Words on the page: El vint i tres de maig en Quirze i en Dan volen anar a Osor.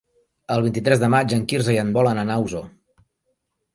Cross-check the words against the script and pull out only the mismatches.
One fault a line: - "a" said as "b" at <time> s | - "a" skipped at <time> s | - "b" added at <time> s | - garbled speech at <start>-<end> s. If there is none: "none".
- "Dan" skipped at 1.9 s